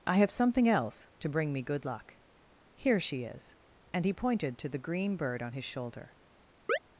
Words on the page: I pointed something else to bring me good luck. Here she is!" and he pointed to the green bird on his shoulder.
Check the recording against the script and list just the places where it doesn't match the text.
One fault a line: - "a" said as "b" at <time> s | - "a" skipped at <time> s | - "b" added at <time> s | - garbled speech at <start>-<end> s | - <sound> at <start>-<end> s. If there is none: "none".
- "pointed" said as "have" at 0.1 s
- chirp at 6.7-6.8 s